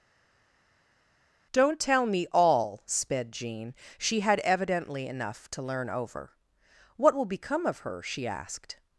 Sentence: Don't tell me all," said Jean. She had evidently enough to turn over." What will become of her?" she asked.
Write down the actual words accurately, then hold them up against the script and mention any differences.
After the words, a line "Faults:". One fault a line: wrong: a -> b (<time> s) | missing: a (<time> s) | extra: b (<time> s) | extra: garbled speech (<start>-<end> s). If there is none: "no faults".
Don't tell me all," sped Jean. She had evidently enough to learn over." What will become of her?" she asked.
Faults:
wrong: said -> sped (2.9 s)
wrong: turn -> learn (5.6 s)